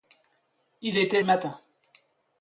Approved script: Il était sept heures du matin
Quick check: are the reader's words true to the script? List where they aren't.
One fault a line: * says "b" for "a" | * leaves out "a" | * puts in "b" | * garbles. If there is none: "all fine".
* leaves out "sept heures du"